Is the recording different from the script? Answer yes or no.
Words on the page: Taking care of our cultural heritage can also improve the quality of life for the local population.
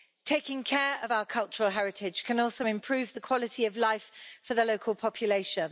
no